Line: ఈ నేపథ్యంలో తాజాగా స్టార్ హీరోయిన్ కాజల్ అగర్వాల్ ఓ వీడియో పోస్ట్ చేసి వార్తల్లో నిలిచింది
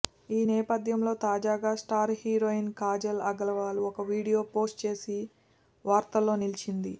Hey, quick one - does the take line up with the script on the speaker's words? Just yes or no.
yes